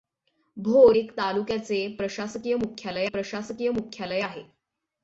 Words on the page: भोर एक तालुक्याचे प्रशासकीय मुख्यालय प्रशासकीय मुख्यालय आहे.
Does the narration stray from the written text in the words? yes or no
no